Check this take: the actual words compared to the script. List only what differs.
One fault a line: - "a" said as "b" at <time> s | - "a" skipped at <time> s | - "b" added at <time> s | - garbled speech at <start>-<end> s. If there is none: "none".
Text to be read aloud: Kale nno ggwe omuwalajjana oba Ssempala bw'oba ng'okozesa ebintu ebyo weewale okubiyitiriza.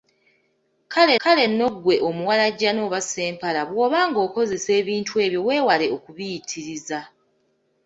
- "kale" added at 1.2 s